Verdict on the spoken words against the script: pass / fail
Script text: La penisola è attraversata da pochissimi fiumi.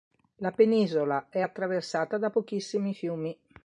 pass